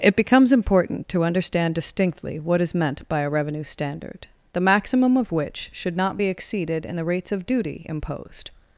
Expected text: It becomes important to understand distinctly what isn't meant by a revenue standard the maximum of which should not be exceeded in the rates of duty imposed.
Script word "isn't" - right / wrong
wrong